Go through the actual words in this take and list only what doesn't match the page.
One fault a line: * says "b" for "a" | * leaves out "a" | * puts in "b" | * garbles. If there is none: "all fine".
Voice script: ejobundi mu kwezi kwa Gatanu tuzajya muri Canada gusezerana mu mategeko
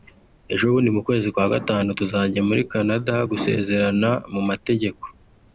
all fine